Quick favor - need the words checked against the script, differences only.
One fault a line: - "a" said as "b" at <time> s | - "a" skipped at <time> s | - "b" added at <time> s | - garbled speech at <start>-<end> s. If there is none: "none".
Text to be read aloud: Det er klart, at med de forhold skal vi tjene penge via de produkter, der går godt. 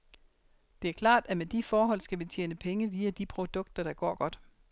none